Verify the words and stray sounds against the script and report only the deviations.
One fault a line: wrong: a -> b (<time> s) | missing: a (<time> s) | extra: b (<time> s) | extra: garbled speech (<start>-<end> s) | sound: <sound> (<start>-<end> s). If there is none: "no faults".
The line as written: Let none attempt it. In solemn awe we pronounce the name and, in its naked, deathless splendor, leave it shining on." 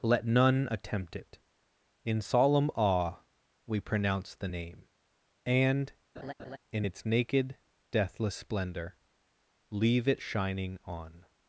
sound: laugh (6.2-6.6 s)